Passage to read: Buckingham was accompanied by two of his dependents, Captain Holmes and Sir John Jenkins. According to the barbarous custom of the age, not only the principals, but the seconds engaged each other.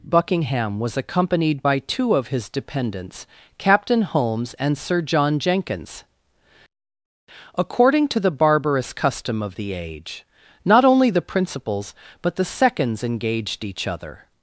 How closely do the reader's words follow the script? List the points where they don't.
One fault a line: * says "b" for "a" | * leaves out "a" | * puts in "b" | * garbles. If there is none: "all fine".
all fine